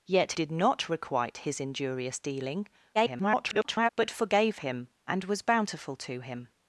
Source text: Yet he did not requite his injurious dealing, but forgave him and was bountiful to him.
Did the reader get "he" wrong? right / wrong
wrong